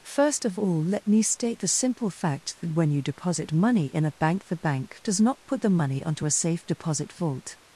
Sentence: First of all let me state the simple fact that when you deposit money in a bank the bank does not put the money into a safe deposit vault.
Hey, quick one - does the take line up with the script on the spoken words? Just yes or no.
no